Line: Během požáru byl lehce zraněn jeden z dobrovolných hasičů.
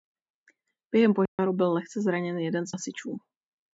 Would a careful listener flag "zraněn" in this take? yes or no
no